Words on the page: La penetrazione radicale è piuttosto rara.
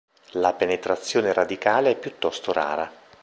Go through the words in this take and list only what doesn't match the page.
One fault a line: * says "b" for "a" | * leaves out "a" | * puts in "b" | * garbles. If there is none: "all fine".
all fine